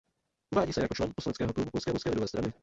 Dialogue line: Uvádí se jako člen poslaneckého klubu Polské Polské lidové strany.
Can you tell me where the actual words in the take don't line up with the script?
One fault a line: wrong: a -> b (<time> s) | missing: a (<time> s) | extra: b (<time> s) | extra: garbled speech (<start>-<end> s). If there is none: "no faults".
no faults